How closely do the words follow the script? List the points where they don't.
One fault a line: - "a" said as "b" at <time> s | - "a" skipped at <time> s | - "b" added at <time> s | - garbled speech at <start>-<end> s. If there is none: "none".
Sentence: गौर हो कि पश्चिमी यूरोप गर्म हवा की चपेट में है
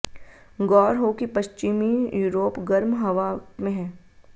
- "की चपेट" skipped at 3.3 s